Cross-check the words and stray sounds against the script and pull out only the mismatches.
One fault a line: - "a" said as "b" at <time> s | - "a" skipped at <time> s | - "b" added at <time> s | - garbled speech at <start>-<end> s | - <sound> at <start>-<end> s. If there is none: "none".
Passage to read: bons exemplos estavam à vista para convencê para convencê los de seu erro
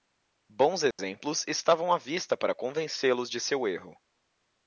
- dropout at 0.9-1.0 s
- "para convencê" skipped at 3.1 s